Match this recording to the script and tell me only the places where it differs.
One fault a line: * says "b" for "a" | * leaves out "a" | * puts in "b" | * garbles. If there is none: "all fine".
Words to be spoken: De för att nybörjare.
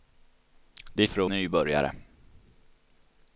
all fine